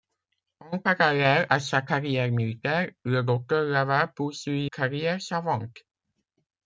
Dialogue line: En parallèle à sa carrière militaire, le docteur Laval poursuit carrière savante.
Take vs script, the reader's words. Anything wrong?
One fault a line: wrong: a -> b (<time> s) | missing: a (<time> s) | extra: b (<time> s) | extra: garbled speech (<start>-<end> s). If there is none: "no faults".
no faults